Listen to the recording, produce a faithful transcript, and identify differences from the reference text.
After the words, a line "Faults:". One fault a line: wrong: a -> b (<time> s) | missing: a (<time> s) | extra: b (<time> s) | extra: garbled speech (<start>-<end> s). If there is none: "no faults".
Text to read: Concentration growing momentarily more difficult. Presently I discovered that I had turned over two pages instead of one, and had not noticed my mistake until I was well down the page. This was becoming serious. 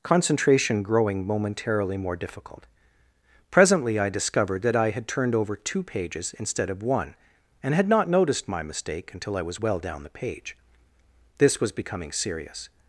Concentration growing momentarily more difficult. Presently I discovered that I had turned over two pages instead of one, and had not noticed my mistake until I was well down the page. This was becoming serious.
Faults:
no faults